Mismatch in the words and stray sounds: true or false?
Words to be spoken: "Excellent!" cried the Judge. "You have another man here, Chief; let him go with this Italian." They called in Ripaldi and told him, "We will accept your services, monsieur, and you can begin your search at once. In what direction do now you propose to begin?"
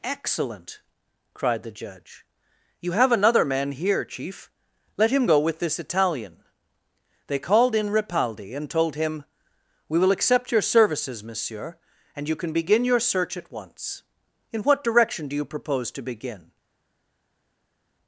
true